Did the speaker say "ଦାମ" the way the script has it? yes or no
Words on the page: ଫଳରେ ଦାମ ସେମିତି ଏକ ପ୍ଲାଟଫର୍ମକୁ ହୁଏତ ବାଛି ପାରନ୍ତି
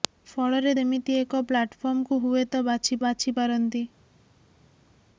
no